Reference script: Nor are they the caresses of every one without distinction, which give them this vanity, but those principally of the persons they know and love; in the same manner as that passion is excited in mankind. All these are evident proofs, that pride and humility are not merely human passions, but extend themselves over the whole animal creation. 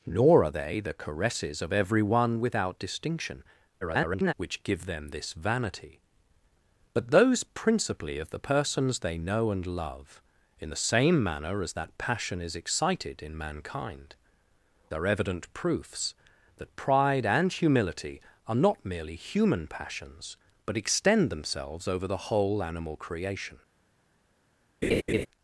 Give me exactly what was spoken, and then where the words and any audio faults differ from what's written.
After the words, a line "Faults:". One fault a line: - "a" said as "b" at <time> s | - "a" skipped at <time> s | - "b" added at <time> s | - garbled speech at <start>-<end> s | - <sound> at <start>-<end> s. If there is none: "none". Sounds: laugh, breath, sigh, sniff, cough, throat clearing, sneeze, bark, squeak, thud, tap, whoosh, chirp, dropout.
Nor are they the caresses of every one without distinction, [garbled] which give them this vanity, but those principally of the persons they know and love; in the same manner as that passion is excited in mankind. Are evident proofs, that pride and humility are not merely human passions, but extend themselves over the whole animal creation.
Faults:
- garbled speech at 3.8-4.3 s
- "All these" skipped at 14.2 s
- laugh at 24.8-25.3 s